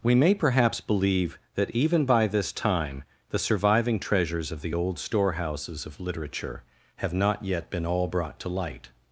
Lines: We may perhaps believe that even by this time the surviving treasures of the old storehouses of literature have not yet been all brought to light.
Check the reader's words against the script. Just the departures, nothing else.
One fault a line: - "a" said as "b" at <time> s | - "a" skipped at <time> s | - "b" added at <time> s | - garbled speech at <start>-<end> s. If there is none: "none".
none